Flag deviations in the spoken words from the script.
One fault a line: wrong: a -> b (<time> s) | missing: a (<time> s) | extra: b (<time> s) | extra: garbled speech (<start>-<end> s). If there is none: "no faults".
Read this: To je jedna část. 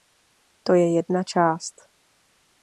no faults